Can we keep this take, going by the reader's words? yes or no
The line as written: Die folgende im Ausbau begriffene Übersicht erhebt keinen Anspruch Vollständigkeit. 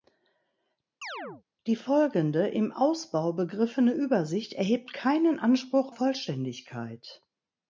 yes